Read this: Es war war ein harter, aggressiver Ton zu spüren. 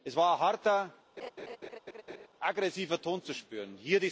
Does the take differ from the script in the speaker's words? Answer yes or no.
yes